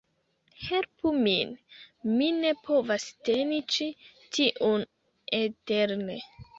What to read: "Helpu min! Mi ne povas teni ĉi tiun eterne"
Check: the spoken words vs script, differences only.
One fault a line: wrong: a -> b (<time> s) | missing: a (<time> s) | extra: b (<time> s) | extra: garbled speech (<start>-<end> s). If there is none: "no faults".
no faults